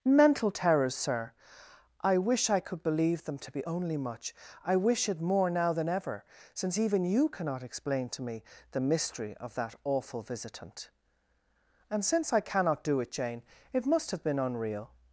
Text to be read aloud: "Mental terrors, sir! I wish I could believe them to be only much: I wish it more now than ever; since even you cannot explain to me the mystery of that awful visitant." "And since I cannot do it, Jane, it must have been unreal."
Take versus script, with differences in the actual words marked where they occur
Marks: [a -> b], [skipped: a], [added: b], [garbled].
"Mental terrors, sir! I wish I could believe them to be only much: I wish it more now than ever; since even you cannot explain to me the mystery of that awful visitant." "And since I cannot do it, Jane, it must have been unreal."